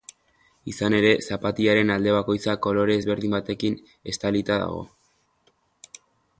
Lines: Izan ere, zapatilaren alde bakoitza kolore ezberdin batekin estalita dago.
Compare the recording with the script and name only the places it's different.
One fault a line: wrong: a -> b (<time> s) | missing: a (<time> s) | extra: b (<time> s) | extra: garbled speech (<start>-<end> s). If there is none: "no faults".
no faults